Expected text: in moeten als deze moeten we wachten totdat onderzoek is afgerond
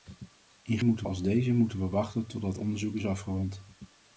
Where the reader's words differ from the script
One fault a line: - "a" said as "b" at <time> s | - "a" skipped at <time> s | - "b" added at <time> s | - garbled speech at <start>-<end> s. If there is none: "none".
none